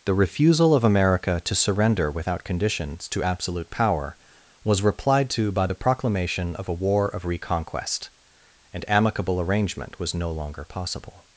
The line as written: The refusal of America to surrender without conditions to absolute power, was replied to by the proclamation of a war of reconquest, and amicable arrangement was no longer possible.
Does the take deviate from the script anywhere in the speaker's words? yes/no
no